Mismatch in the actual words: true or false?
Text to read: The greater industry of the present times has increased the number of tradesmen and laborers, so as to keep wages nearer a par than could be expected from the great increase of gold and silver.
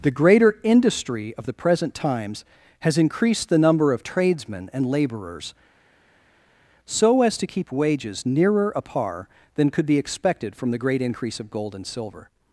false